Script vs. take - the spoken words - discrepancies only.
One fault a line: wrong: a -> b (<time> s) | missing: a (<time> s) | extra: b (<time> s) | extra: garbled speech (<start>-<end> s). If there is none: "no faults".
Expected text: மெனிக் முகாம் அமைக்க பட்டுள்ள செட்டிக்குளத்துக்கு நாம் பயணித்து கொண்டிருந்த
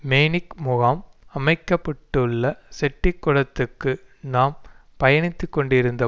no faults